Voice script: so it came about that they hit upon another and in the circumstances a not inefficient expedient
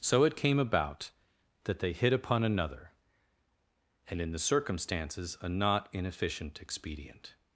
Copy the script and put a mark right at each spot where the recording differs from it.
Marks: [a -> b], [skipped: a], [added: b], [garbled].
so it came about that they hit upon another and in the circumstances a not inefficient expedient